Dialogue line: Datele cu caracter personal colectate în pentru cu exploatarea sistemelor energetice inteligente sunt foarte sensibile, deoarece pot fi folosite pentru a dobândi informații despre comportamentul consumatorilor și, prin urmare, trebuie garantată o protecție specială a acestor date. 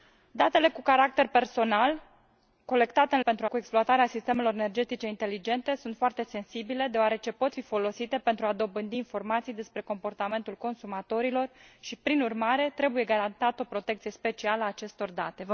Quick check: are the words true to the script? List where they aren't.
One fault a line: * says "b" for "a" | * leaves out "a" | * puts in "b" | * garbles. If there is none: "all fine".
all fine